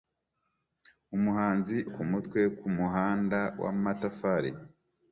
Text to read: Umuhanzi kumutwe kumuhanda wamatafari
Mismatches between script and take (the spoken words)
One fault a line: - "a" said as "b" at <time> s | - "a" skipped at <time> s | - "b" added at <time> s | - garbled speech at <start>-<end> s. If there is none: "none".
none